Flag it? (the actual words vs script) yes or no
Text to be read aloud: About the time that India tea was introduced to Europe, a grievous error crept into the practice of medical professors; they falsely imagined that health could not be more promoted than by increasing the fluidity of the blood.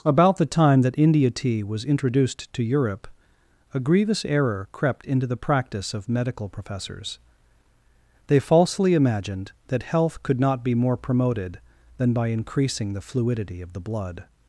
no